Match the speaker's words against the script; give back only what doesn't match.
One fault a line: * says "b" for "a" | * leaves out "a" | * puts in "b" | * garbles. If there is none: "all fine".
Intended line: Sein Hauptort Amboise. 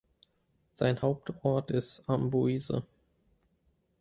* puts in "ist"